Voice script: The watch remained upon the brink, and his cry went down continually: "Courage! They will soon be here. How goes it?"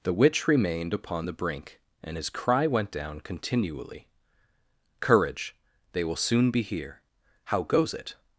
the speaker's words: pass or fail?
fail